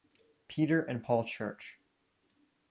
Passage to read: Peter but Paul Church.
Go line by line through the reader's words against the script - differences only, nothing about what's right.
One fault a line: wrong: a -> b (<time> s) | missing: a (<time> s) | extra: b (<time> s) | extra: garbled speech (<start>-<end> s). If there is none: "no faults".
wrong: but -> and (0.8 s)